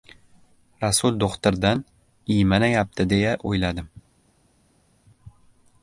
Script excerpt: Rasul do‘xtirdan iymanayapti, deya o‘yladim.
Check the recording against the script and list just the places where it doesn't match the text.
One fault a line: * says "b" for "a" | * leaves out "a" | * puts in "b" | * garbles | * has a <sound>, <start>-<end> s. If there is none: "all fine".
all fine